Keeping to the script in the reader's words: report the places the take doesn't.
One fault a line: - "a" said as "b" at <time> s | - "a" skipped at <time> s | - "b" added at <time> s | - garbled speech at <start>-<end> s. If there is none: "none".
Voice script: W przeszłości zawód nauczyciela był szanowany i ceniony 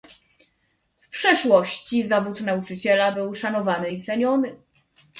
none